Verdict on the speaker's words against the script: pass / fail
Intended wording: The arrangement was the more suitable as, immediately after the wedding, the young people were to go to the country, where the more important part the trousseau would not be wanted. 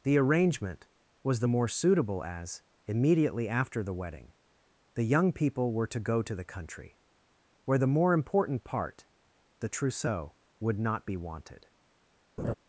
pass